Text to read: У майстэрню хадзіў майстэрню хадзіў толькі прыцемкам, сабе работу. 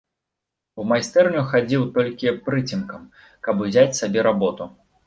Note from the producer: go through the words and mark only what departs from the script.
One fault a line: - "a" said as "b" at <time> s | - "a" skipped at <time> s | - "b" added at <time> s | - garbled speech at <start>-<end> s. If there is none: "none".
- "майстэрню хадзіў толькі прыцемкам" said as "толькі прыцемкам каб узяць" at 2.0 s